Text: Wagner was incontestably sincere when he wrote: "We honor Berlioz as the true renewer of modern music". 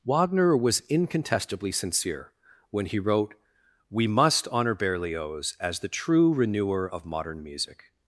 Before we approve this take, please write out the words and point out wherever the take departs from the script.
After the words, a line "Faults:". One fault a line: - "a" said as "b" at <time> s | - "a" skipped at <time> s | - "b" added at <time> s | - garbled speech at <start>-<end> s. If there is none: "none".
Wagner was incontestably sincere when he wrote: "We must honor Berlioz as the true renewer of modern music".
Faults:
- "must" added at 4.1 s